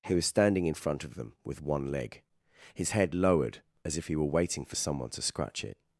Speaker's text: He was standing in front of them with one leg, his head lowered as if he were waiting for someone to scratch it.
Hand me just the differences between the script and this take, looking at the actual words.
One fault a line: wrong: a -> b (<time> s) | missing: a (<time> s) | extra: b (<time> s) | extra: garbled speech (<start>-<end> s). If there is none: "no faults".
no faults